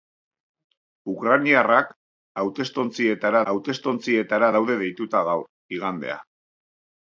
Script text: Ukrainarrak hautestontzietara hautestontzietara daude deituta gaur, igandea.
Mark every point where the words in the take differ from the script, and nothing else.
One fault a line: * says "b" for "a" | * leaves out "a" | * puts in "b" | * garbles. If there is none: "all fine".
all fine